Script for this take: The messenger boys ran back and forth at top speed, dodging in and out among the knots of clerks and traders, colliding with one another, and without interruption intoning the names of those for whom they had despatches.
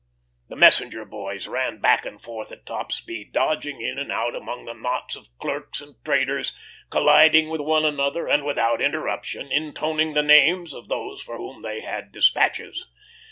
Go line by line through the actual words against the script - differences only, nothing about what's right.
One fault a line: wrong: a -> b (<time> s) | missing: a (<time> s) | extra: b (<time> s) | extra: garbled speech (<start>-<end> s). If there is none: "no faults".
no faults